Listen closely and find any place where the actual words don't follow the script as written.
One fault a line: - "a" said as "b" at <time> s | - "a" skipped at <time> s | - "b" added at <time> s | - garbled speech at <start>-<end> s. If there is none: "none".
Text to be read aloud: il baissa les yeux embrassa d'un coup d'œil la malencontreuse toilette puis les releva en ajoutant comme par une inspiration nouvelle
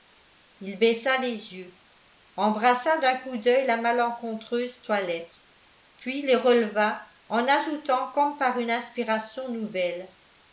none